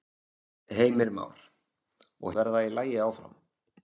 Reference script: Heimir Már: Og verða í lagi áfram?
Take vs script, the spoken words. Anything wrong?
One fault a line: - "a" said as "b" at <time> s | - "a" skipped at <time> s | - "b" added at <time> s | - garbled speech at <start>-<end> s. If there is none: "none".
none